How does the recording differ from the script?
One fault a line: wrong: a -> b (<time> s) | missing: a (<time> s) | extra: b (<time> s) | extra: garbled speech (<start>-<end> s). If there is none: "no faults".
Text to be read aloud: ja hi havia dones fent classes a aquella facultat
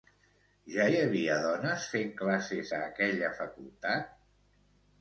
no faults